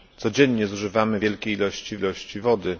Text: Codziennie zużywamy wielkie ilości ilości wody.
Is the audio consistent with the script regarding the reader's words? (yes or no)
yes